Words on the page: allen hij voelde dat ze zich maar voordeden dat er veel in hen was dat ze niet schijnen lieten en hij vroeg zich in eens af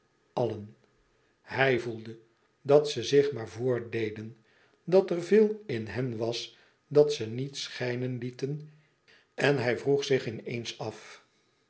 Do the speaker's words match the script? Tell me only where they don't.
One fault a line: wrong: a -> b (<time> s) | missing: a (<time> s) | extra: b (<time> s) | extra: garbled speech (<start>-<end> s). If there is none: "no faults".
no faults